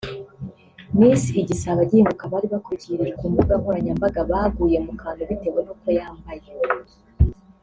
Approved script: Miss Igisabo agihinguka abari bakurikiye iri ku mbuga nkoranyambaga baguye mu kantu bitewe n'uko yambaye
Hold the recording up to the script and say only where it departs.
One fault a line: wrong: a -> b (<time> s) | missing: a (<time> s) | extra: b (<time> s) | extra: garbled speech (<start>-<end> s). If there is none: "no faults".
no faults